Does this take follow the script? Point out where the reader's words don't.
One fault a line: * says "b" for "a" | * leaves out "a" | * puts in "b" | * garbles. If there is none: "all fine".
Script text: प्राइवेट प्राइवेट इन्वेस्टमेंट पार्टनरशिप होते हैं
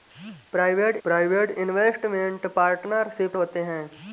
all fine